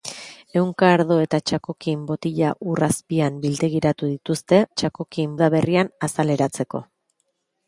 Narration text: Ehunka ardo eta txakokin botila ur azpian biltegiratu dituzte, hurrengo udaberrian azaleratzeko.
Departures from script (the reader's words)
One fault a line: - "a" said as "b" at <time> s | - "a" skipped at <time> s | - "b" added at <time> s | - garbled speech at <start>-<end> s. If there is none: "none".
- "hurrengo" said as "txakokin" at 4.8 s